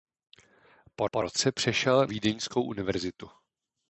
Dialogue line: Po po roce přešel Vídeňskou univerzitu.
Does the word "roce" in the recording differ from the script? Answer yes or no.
no